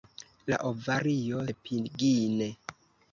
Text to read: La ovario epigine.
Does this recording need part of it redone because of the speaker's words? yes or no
no